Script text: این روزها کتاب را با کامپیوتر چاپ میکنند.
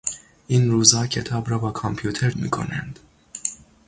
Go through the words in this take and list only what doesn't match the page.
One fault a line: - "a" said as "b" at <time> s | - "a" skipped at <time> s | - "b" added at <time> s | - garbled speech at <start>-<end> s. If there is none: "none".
- "چاپ" skipped at 2.3 s